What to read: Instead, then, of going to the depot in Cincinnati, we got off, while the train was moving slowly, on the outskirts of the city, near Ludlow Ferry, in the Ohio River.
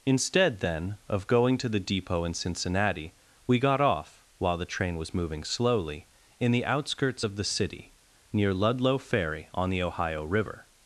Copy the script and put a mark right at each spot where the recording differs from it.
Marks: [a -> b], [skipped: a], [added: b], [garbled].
Instead, then, of going to the depot in Cincinnati, we got off, while the train was moving slowly, [on -> in] the outskirts of the city, near Ludlow Ferry, [in -> on] the Ohio River.